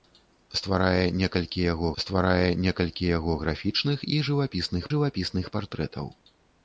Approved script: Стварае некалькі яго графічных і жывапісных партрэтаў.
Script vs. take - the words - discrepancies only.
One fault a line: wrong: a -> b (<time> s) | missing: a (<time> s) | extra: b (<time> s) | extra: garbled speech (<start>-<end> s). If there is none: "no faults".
extra: стварае некалькі яго (2.0 s)
extra: жывапісных (4.9 s)